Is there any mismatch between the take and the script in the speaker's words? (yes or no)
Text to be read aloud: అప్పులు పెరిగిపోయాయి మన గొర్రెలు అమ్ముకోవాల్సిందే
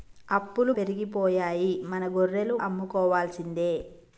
no